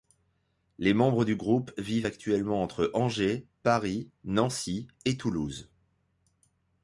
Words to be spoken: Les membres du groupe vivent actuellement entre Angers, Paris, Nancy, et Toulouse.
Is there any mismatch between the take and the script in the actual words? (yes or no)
no